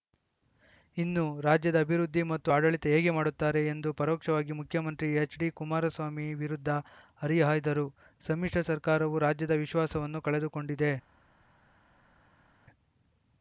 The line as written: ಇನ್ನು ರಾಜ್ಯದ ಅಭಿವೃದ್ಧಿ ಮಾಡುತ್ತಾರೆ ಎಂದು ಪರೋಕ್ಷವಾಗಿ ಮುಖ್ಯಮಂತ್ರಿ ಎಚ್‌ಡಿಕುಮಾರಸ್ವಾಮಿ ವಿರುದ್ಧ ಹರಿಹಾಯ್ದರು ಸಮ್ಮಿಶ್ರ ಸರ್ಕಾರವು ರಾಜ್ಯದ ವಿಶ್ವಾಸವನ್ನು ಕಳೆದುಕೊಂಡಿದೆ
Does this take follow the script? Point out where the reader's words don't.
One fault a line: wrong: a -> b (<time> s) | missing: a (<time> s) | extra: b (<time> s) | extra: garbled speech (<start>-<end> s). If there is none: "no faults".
extra: ಮತ್ತು ಆಡಳಿತ ಹೇಗೆ (2.2 s)